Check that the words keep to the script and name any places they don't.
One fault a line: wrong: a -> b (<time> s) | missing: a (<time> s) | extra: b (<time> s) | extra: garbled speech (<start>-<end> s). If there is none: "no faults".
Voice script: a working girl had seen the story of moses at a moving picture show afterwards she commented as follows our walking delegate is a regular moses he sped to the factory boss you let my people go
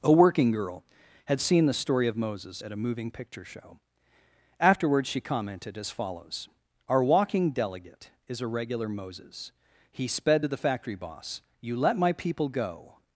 no faults